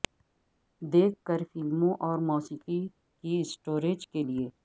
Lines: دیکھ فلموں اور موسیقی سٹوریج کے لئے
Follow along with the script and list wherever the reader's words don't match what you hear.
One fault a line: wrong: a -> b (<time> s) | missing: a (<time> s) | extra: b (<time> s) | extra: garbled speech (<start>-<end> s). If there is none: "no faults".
extra: کر (1.3 s)
extra: کی (3.2 s)